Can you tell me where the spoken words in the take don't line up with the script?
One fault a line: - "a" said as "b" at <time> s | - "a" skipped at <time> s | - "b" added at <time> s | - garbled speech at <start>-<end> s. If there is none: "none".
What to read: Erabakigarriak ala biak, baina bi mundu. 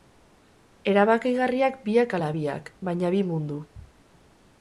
- "biak" added at 1.9 s